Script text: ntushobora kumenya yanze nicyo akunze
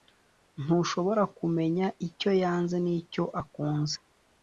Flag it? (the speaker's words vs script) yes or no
yes